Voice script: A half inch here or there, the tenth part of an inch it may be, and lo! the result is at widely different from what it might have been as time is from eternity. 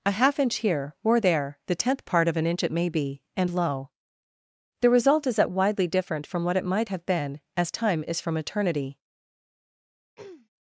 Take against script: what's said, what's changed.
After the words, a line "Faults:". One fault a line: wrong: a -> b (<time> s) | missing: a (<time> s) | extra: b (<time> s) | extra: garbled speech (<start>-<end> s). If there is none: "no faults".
A half inch here or there, the tenth part of an inch it may be, and lo! the result is at widely different from what it might have been as time is from eternity.
Faults:
no faults